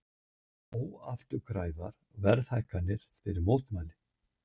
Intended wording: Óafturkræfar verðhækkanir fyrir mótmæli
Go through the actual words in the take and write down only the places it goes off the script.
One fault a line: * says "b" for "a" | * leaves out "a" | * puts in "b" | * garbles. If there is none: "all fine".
all fine